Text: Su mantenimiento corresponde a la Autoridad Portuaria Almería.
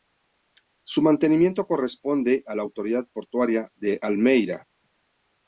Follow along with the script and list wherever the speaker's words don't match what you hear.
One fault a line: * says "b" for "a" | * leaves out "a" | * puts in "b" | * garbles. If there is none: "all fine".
* puts in "de"